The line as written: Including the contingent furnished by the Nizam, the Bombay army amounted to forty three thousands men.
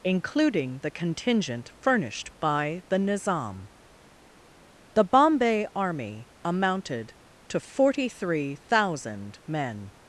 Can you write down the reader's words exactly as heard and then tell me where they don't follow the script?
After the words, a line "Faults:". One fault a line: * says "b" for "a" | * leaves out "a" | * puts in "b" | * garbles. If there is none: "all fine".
Including the contingent furnished by the Nizam, the Bombay army amounted to forty three thousand men.
Faults:
* says "thousand" for "thousands"